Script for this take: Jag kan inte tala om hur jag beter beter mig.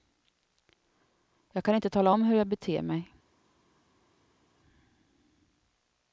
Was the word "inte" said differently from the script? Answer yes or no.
no